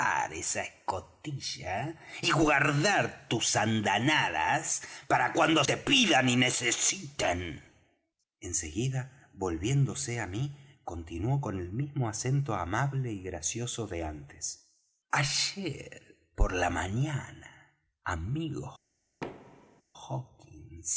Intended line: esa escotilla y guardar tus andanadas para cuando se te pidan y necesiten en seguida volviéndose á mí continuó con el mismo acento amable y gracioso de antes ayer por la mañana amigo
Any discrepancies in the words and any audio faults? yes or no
yes